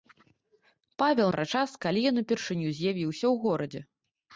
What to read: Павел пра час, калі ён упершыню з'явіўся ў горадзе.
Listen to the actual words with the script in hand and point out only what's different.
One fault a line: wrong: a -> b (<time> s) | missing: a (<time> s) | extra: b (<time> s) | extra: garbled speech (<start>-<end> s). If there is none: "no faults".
no faults